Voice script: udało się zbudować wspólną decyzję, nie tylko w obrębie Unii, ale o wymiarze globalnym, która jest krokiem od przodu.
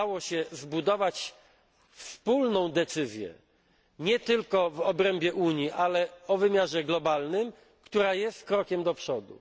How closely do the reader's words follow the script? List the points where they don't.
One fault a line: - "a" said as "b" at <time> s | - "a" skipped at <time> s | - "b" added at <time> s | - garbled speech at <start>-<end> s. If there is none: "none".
- "od" said as "do" at 8.8 s